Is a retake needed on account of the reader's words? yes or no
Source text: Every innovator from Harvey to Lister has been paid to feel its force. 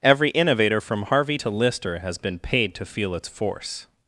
no